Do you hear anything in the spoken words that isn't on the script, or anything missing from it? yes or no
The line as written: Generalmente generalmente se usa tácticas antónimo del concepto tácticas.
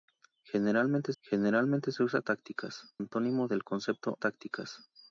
no